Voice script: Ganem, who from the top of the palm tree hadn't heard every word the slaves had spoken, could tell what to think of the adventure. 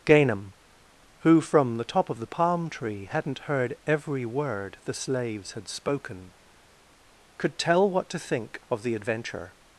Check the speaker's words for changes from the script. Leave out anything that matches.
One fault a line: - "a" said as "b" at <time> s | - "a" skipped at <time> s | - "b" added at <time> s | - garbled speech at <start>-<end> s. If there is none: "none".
none